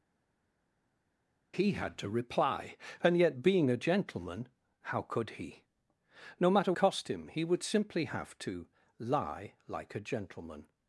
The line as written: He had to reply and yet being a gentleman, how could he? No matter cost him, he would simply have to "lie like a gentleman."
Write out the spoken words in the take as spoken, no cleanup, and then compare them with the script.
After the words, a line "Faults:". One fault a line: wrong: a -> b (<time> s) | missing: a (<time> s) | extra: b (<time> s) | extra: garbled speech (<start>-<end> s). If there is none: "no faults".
He had to reply and yet being a gentleman, how could he? No matter cost him, he would simply have to "lie like a gentleman."
Faults:
no faults